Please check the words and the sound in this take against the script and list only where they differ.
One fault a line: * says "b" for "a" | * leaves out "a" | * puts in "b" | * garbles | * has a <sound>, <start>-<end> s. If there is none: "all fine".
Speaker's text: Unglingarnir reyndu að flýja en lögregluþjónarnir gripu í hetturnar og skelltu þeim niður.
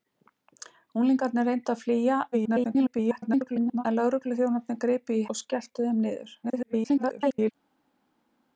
* garbles
* leaves out "hetturnar"
* garbles